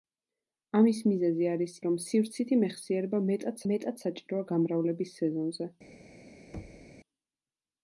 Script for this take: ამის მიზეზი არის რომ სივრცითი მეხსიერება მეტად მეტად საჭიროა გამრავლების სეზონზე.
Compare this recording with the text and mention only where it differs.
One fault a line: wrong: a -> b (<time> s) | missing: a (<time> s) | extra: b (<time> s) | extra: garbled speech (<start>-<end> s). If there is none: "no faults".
no faults